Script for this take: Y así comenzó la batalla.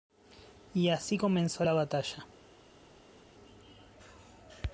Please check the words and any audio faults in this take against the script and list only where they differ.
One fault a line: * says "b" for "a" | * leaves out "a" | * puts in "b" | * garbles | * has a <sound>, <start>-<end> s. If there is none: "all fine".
all fine